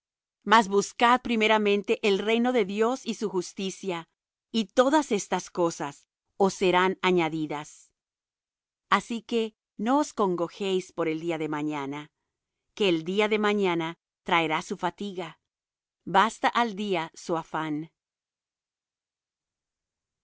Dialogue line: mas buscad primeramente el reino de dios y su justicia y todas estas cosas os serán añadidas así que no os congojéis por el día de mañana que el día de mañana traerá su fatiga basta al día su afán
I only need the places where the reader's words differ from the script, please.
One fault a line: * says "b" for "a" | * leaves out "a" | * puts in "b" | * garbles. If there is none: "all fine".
all fine